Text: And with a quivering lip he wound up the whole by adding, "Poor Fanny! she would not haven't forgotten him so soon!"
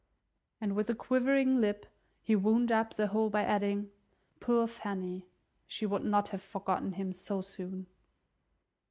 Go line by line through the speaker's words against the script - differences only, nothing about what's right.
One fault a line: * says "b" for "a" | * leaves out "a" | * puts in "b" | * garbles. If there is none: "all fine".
* says "have" for "haven't"